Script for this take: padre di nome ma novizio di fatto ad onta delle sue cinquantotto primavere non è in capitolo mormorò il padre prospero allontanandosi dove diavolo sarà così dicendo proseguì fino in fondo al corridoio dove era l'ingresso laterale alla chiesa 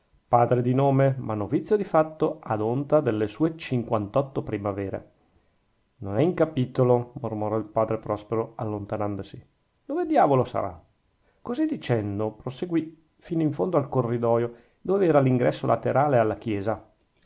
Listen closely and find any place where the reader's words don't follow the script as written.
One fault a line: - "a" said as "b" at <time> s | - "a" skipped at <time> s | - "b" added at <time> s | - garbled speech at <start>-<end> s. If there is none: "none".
none